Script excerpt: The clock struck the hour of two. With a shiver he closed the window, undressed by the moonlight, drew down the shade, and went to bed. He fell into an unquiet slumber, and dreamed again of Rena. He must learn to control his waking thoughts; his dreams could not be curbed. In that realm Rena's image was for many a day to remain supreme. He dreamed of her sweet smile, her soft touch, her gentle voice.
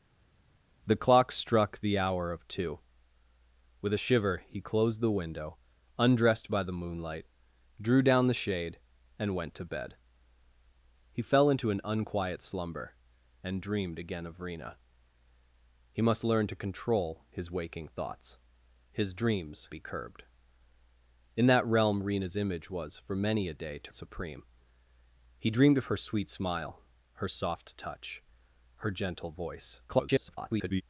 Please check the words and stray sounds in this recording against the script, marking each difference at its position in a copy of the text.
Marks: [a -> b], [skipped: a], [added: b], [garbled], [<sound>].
The clock struck the hour of two. With a shiver he closed the window, undressed by the moonlight, drew down the shade, and went to bed. He fell into an unquiet slumber, and dreamed again of Rena. He must learn to control his waking thoughts; his dreams [skipped: could not] be curbed. In that realm Rena's image was for many a day to [skipped: remain] supreme. He dreamed of her sweet smile, her soft touch, her gentle voice. [garbled]